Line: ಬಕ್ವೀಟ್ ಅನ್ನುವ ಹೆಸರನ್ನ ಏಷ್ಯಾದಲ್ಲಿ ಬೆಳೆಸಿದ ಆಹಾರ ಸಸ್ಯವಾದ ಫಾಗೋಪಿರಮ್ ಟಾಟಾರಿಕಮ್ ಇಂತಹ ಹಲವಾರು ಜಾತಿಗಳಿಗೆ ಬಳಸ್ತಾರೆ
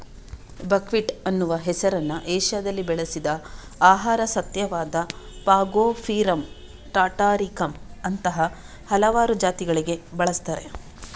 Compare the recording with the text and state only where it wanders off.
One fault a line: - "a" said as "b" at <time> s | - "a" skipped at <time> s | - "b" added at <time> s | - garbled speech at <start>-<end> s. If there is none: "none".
- "ಇಂತಹ" said as "ಅಂತಹ" at 8.0 s